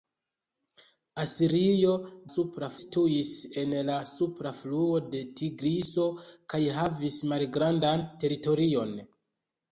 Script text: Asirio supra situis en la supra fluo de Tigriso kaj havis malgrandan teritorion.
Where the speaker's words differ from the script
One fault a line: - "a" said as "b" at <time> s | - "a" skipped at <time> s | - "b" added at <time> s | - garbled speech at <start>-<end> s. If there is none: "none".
none